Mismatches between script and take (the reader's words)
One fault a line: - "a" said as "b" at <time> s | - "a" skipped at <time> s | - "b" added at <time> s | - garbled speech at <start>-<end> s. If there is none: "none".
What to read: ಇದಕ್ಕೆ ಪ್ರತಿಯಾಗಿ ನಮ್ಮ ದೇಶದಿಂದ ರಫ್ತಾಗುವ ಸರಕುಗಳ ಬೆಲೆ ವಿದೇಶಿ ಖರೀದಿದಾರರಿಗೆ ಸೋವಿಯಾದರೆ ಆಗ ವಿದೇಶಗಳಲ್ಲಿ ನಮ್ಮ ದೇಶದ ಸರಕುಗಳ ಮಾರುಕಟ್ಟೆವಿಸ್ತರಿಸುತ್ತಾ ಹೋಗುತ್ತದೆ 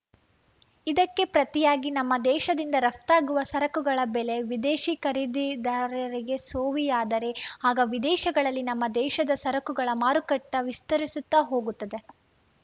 none